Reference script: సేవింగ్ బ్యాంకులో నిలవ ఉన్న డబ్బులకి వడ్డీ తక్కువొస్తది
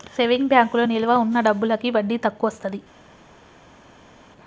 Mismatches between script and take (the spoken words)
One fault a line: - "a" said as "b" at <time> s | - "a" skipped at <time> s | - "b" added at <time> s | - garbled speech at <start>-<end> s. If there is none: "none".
none